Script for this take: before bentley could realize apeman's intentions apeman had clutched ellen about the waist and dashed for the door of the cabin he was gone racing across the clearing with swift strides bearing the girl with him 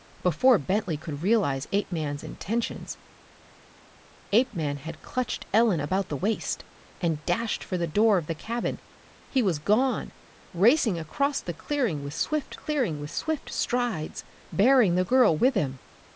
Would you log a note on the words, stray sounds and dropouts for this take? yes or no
yes